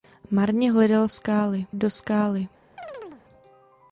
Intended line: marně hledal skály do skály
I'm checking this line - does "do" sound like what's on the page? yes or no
yes